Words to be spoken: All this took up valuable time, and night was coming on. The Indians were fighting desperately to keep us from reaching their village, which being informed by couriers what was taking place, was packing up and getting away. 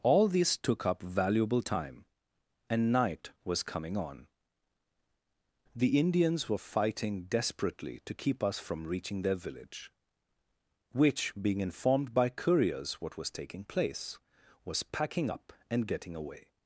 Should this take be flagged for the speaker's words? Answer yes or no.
no